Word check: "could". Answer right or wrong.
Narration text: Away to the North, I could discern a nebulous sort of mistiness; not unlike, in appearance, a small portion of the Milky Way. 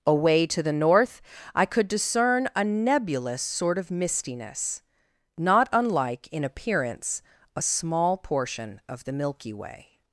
right